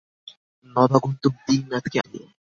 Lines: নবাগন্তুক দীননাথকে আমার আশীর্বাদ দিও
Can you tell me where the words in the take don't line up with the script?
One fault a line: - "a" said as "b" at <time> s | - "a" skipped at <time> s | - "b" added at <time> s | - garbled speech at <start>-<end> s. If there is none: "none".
- "আমার আশীর্বাদ" skipped at 2.0 s